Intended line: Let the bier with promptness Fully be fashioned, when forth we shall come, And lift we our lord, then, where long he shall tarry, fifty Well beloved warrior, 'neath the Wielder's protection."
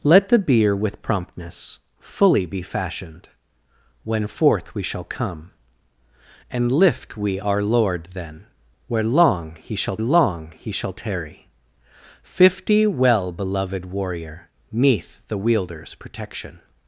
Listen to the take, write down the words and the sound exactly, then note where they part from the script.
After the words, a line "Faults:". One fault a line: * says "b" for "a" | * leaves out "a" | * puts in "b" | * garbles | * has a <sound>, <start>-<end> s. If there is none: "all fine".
Let the bier with promptness Fully be fashioned, when forth we shall come, And lift we our lord, then, where long he shall long he shall tarry, fifty Well beloved warrior, 'neath the Wielder's protection."
Faults:
* puts in "long he shall"